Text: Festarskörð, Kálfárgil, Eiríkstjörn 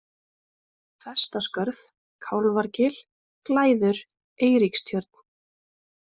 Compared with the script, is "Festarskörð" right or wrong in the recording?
right